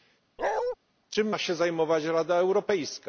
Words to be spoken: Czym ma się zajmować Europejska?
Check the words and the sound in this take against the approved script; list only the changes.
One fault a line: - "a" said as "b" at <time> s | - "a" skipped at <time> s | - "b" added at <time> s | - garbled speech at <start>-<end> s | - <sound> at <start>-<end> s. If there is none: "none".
- bark at 0.4-0.8 s
- "Rada" added at 2.0 s